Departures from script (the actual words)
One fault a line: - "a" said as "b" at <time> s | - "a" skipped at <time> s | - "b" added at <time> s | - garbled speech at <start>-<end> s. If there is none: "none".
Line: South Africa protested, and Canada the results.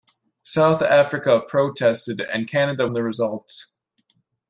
none